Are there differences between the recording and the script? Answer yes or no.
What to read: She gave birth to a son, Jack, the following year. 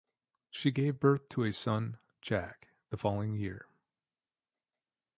no